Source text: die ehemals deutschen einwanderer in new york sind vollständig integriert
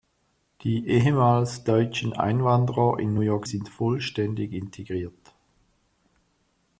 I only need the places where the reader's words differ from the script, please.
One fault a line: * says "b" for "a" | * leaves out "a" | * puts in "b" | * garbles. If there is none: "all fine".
all fine